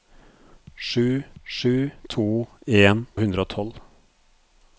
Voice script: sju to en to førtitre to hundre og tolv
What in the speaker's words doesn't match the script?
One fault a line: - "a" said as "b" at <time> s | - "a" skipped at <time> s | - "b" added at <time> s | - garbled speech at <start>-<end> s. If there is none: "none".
- "sju" added at 1.4 s
- "to førtitre to" skipped at 3.1 s